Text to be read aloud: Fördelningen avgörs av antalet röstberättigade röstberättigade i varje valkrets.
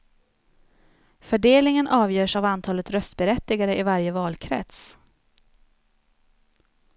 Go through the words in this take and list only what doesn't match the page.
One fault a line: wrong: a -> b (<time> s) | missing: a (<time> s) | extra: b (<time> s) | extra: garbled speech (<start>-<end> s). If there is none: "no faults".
missing: röstberättigade (3.8 s)